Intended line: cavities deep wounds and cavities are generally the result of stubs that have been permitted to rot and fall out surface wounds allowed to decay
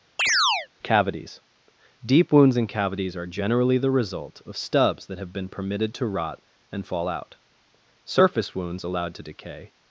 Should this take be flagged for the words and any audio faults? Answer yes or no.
yes